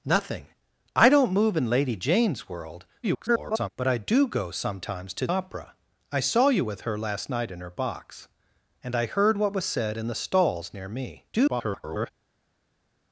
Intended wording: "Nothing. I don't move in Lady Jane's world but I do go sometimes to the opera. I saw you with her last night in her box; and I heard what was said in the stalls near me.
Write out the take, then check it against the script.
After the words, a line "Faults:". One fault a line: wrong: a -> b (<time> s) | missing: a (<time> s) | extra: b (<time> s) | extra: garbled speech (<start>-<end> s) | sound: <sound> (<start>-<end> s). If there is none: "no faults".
"Nothing. I don't move in Lady Jane's world [garbled] but I do go sometimes to opera. I saw you with her last night in her box; and I heard what was said in the stalls near me. [garbled]
Faults:
extra: garbled speech (3.0-3.7 s)
missing: the (5.3 s)
extra: garbled speech (11.3-12.1 s)